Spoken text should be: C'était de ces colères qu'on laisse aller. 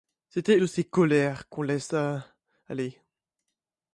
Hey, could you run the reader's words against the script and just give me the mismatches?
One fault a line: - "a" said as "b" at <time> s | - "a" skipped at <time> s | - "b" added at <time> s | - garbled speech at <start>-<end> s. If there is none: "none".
none